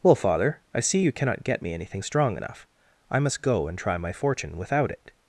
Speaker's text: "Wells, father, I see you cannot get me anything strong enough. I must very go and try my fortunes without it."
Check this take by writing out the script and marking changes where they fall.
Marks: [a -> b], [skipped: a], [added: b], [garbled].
["Wells, -> Well] father, I see you cannot get me anything strong enough. I must [skipped: very] go and try my [fortunes -> fortune] without it."